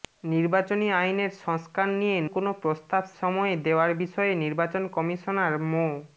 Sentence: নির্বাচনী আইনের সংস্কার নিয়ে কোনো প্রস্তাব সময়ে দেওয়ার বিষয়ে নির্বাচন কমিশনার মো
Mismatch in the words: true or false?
false